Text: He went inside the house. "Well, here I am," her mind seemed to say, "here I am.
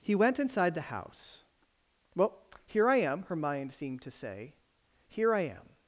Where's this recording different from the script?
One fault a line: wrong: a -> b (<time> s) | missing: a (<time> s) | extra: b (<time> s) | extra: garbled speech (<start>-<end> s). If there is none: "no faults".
no faults